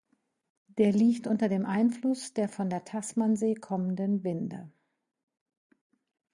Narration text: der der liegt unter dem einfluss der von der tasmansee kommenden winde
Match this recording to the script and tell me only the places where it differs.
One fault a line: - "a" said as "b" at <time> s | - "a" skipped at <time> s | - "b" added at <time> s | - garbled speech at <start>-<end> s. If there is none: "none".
- "der" skipped at 0.9 s